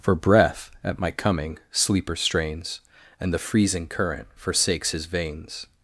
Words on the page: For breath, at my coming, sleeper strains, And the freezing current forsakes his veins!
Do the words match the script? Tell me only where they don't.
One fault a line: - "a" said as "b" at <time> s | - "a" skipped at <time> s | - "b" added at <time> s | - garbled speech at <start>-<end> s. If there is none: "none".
none